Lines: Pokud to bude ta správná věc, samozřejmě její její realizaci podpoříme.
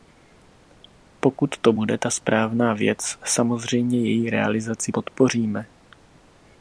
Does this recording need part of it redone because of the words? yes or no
yes